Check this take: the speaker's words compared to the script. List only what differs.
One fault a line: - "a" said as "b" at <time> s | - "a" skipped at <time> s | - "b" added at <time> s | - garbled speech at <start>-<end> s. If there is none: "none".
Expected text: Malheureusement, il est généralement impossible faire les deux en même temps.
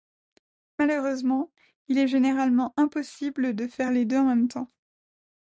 - "de" added at 3.5 s